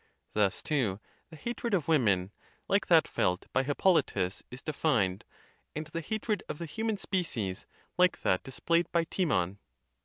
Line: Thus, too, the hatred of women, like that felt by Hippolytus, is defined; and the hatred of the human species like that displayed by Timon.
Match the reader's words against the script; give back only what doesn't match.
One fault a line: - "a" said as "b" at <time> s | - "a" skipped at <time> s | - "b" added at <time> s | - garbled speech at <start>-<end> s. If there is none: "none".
none